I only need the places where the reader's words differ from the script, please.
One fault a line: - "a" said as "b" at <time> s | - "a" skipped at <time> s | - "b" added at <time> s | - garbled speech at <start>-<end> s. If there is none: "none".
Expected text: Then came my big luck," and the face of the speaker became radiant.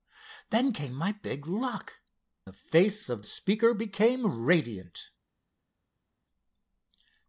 - "and" skipped at 2.0 s
- "the" skipped at 3.2 s